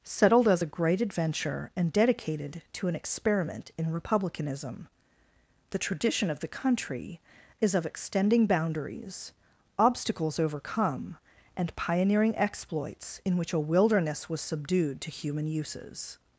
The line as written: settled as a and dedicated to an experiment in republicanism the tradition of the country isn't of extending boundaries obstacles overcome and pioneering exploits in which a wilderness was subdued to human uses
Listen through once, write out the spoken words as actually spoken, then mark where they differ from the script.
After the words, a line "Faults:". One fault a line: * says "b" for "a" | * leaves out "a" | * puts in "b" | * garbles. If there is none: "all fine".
settled as a great adventure and dedicated to an experiment in republicanism the tradition of the country is of extending boundaries obstacles overcome and pioneering exploits in which a wilderness was subdued to human uses
Faults:
* puts in "great adventure"
* says "is" for "isn't"